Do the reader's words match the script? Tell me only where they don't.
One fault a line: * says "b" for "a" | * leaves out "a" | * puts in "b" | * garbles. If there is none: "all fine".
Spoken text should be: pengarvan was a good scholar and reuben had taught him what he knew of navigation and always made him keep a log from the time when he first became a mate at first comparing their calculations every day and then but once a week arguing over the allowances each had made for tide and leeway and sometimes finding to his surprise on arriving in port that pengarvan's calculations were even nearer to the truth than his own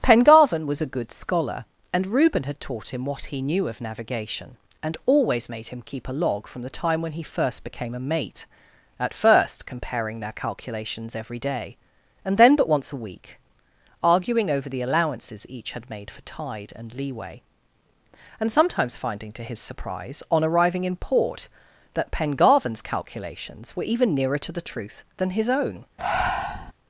all fine